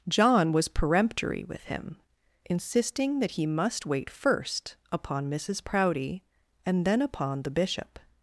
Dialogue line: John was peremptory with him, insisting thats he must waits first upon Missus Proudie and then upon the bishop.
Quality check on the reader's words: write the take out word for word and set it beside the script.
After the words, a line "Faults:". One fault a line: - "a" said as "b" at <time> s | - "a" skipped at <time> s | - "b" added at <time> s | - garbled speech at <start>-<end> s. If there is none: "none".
John was peremptory with him, insisting that he must wait first upon Missus Proudie and then upon the bishop.
Faults:
- "thats" said as "that" at 3.2 s
- "waits" said as "wait" at 3.9 s